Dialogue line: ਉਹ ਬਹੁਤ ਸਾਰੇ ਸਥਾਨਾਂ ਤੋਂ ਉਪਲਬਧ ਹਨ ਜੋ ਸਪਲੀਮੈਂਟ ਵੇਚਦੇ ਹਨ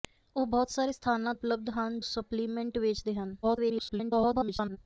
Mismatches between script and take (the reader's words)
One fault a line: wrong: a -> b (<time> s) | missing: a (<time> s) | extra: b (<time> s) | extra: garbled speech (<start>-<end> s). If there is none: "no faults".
missing: ਤੋਂ (1.3 s)
missing: ਜੋ (2.0 s)
extra: garbled speech (3.4-4.8 s)